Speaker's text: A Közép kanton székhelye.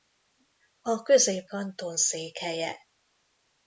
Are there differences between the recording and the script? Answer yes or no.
no